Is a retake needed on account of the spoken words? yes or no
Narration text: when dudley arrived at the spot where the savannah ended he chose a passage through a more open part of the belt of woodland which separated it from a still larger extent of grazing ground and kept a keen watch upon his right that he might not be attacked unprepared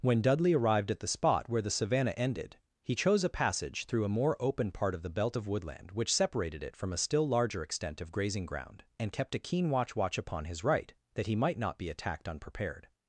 yes